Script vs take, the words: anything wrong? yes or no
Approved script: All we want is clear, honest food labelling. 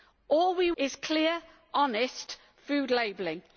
yes